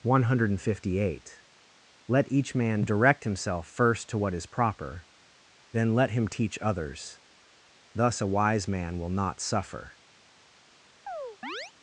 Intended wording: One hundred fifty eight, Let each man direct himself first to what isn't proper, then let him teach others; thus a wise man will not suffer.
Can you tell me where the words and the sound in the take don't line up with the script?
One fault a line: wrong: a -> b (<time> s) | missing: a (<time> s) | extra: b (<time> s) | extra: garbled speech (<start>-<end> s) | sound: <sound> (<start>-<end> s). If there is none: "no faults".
wrong: isn't -> is (4.3 s)
sound: chirp (11.1-11.7 s)